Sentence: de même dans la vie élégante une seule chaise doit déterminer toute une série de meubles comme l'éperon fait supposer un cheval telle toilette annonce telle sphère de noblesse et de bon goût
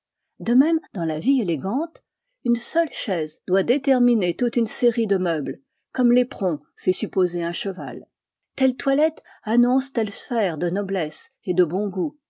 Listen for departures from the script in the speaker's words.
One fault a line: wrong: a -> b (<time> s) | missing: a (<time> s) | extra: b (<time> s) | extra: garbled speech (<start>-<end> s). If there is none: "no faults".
no faults